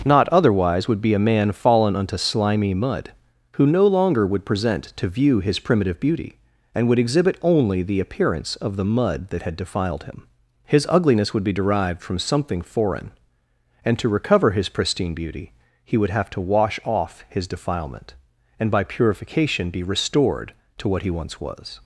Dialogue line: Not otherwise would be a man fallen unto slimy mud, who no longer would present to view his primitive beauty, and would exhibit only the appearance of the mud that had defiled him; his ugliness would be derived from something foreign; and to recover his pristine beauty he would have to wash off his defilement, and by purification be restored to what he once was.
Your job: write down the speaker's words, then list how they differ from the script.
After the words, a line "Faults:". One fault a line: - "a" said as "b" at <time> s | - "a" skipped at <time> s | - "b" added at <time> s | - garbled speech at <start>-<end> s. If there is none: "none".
Not otherwise would be a man fallen unto slimy mud, who no longer would present to view his primitive beauty, and would exhibit only the appearance of the mud that had defiled him; his ugliness would be derived from something foreign; and to recover his pristine beauty he would have to wash off his defilement, and by purification be restored to what he once was.
Faults:
none